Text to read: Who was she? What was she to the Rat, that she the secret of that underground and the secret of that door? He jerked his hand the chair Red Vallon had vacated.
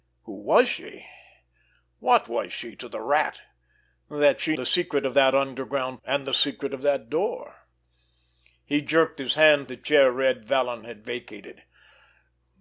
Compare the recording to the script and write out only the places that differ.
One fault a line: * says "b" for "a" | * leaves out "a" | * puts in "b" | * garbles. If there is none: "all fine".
all fine